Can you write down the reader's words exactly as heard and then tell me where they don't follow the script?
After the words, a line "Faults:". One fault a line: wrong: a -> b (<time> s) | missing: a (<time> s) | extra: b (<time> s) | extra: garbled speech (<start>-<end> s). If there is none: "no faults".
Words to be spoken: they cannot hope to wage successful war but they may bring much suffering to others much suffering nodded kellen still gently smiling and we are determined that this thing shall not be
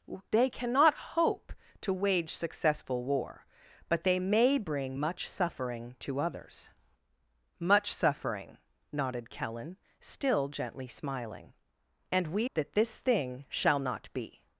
they cannot hope to wage successful war but they may bring much suffering to others much suffering nodded kellen still gently smiling and we that this thing shall not be
Faults:
missing: are determined (12.5 s)